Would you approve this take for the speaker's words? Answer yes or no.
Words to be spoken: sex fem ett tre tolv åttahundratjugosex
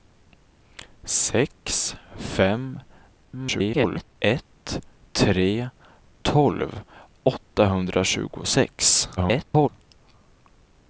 no